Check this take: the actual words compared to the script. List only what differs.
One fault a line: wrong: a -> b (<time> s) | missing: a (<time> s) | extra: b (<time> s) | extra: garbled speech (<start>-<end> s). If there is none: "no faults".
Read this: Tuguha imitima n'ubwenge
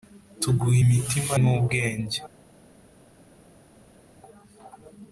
no faults